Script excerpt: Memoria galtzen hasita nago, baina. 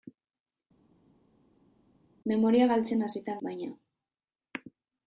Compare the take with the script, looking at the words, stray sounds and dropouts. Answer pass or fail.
fail